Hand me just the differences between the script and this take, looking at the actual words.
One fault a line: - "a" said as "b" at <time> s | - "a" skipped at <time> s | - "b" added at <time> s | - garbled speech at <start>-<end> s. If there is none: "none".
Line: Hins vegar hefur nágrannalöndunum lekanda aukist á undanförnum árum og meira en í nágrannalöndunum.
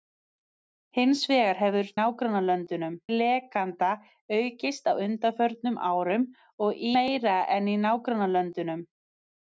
none